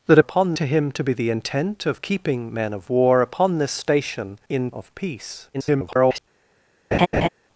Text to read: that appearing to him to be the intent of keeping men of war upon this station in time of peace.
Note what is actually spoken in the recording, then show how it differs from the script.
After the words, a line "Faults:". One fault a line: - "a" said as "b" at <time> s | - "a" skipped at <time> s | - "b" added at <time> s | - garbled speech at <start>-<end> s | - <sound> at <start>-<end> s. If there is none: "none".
that upon to him to be the intent of keeping men of war upon this station in of peace. [garbled]
Faults:
- "appearing" said as "upon" at 0.2 s
- "time" skipped at 4.7 s
- garbled speech at 5.5-6.2 s
- laugh at 6.9-7.3 s